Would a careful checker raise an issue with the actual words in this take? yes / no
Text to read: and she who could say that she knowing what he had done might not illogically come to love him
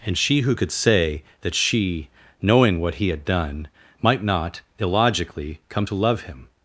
no